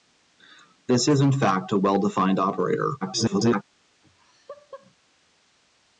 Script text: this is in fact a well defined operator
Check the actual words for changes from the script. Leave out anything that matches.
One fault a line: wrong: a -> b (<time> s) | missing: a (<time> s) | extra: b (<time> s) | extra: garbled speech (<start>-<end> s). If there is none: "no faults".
extra: garbled speech (3.0-3.6 s)